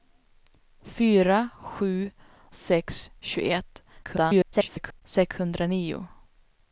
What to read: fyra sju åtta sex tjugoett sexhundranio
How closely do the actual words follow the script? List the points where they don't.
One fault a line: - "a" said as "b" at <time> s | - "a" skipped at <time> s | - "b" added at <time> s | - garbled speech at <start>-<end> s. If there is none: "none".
- "åtta" skipped at 2.1 s
- garbled speech at 4.0-5.0 s